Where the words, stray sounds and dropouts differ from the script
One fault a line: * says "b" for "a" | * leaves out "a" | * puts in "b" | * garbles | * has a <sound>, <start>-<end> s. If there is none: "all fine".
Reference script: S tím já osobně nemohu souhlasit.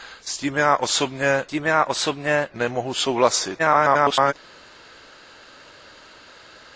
* puts in "tím já osobně"
* garbles